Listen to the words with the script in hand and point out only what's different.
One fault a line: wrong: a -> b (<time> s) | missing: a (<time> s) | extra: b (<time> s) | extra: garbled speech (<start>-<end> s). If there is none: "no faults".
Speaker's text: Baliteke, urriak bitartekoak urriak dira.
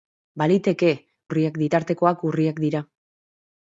no faults